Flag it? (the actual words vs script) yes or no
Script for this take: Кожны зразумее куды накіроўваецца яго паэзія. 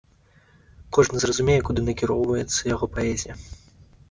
no